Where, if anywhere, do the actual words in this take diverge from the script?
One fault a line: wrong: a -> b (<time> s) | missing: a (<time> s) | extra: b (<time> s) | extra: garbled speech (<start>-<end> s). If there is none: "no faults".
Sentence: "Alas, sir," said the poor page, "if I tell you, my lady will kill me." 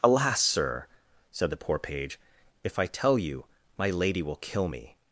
no faults